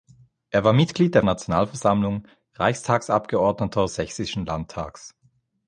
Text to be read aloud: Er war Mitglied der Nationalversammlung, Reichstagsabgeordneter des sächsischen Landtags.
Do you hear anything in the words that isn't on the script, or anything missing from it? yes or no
no